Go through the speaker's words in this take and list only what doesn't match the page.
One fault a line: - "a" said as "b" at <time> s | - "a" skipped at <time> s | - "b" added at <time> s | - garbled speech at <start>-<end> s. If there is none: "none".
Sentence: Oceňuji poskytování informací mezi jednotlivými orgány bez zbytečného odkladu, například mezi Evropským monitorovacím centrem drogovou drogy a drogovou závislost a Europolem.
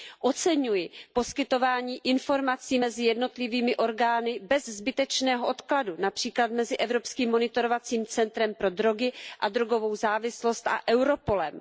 - "drogovou" said as "pro" at 8.5 s